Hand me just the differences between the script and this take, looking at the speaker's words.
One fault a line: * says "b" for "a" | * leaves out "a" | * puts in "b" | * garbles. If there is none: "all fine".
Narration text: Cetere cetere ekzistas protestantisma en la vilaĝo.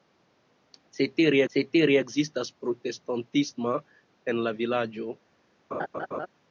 all fine